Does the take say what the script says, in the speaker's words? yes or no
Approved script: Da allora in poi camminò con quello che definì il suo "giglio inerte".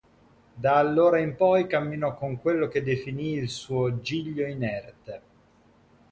yes